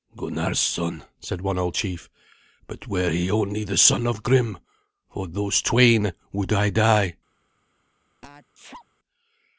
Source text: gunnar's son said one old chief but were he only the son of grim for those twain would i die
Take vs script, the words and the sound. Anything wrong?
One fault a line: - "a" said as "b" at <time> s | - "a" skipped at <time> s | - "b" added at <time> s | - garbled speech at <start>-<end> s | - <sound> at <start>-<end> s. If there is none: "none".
- sneeze at 8.2-8.9 s